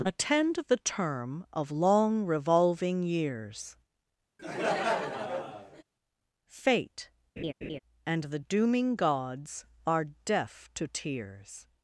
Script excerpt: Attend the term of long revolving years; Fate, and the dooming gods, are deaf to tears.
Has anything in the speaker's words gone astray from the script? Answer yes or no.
no